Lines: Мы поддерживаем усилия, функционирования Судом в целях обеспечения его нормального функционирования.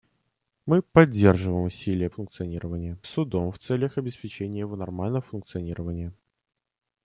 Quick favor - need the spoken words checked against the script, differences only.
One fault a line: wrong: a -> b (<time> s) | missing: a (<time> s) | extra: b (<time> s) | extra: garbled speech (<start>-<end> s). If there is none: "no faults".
no faults